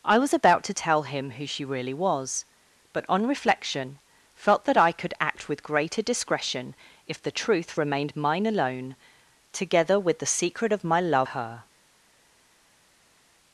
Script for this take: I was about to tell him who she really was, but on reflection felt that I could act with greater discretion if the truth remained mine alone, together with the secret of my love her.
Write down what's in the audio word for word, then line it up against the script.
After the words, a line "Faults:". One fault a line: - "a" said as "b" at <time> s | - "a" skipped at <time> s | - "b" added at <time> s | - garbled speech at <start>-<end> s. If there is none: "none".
I was about to tell him who she really was, but on reflection felt that I could act with greater discretion if the truth remained mine alone, together with the secret of my love her.
Faults:
none